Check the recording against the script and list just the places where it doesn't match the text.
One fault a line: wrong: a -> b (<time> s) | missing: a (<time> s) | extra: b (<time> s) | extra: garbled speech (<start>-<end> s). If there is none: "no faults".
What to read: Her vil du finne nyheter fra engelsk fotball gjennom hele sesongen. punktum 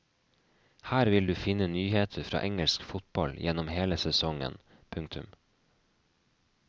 no faults